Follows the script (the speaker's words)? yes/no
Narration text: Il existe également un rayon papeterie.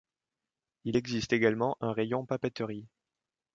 yes